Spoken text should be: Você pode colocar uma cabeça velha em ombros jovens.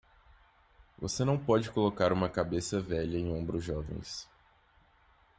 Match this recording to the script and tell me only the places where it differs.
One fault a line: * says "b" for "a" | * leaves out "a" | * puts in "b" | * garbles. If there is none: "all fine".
* puts in "não"